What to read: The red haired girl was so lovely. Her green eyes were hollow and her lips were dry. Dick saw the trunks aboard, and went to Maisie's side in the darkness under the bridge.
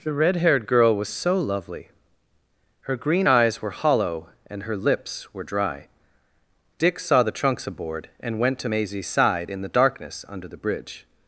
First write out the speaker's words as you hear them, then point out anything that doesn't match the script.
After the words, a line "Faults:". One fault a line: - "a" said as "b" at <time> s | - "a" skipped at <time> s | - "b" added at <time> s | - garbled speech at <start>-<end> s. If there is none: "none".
The red haired girl was so lovely. Her green eyes were hollow and her lips were dry. Dick saw the trunks aboard, and went to Maisie's side in the darkness under the bridge.
Faults:
none